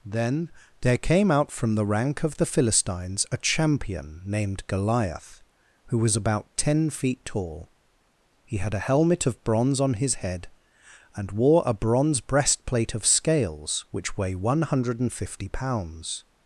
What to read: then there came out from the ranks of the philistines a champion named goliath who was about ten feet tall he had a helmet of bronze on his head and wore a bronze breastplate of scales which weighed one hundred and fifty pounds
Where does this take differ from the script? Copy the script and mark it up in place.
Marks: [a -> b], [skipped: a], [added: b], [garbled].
then there came out from the [ranks -> rank] of the philistines a champion named goliath who was about ten feet tall he had a helmet of bronze on his head and wore a bronze breastplate of scales which [weighed -> weigh] one hundred and fifty pounds